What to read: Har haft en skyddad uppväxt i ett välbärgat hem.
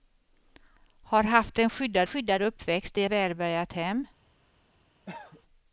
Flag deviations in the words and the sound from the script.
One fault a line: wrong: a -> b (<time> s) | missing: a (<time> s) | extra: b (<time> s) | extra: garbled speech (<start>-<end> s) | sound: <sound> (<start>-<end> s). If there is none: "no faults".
extra: skyddad (2.0 s)
missing: ett (3.0 s)
sound: cough (5.0-5.4 s)